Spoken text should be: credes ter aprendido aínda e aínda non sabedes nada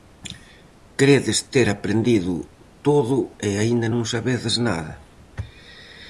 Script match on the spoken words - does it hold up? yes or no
no